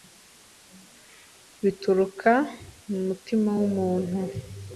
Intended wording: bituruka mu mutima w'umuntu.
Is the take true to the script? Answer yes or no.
yes